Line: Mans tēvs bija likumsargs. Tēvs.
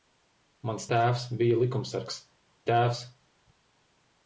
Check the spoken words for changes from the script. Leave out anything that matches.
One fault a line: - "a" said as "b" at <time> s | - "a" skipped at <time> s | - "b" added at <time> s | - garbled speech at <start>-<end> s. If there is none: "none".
none